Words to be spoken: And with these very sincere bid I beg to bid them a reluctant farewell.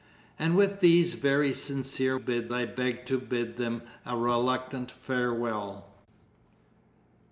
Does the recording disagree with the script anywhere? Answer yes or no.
no